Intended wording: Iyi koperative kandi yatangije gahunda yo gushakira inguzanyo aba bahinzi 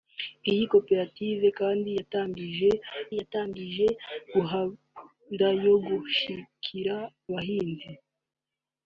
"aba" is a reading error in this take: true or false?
true